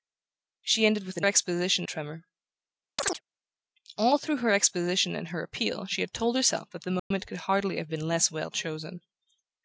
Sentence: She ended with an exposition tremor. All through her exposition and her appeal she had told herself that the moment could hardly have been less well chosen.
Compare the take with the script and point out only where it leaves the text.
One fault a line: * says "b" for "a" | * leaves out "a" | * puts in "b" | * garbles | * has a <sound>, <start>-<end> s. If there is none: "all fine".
* has a chirp, 3.0-3.2 s
* has a dropout, 7.0-7.1 s